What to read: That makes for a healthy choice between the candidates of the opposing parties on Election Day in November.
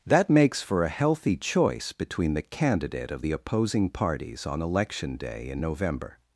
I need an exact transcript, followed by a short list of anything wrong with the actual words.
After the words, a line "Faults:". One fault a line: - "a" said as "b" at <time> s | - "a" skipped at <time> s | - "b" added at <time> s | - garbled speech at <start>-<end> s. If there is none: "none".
That makes for a healthy choice between the candidate of the opposing parties on Election Day in November.
Faults:
- "candidates" said as "candidate" at 2.4 s